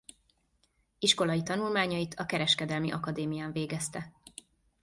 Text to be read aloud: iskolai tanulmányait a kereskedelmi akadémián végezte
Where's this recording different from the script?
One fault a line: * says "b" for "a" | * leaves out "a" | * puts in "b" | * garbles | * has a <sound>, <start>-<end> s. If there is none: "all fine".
all fine